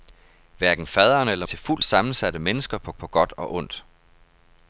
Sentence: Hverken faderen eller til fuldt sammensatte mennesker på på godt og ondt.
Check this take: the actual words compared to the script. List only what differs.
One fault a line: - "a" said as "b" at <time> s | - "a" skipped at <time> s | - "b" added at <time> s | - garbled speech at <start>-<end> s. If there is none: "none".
none